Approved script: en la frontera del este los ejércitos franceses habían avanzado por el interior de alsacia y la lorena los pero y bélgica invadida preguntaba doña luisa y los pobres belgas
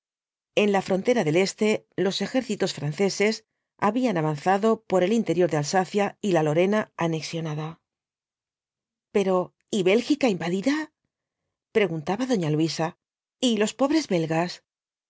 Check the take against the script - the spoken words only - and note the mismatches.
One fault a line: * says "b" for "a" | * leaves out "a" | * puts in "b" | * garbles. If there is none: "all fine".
* says "anexionada" for "los"